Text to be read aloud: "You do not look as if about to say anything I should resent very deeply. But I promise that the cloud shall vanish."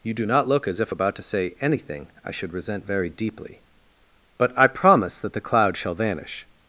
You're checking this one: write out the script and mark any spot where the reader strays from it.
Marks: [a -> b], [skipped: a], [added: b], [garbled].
"You do not look as if about to say anything I should resent very deeply. But I promise that the cloud shall vanish."